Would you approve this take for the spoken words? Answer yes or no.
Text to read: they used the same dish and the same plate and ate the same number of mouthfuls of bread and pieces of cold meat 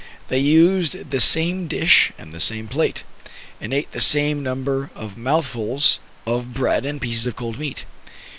yes